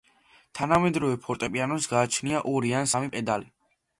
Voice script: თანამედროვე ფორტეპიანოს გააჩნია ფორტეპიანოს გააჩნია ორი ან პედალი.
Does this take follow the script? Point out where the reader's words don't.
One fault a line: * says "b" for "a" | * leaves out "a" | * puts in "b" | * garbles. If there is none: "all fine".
* leaves out "ფორტეპიანოს გააჩნია"
* puts in "სამი"